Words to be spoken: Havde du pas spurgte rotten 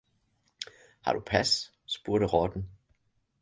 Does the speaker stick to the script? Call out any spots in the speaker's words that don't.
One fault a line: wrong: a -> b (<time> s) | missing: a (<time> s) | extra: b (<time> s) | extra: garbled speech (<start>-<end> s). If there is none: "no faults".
wrong: Havde -> Har (1.0 s)